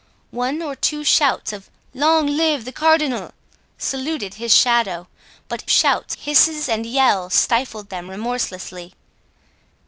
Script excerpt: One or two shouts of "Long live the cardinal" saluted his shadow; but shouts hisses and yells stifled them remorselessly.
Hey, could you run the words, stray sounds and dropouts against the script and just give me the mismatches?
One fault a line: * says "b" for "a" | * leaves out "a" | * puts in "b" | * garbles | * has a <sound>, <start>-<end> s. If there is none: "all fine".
all fine